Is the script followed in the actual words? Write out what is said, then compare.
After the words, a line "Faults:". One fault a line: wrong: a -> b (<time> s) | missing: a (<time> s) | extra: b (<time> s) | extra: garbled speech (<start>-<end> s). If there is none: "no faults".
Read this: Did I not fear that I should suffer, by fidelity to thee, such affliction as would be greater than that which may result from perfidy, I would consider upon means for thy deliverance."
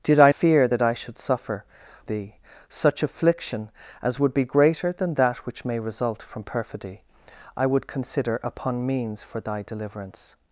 Did I fear that I should suffer, thee, such affliction as would be greater than that which may result from perfidy, I would consider upon means for thy deliverance."
Faults:
missing: not (0.3 s)
missing: by fidelity to (1.6 s)